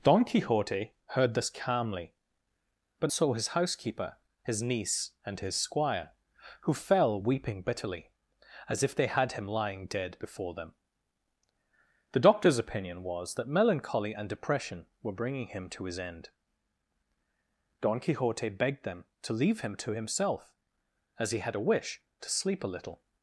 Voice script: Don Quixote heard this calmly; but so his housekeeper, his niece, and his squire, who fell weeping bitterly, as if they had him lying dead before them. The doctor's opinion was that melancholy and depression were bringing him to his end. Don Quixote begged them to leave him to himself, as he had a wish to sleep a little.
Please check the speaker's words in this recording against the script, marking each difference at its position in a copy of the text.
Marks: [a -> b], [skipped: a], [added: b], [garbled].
Don Quixote heard this calmly; but so his housekeeper, his niece, and his squire, who fell weeping bitterly, as if they had him lying dead before them. The doctor's opinion was that melancholy and depression were bringing him to his end. Don Quixote begged them to leave him to himself, as he had a wish to sleep a little.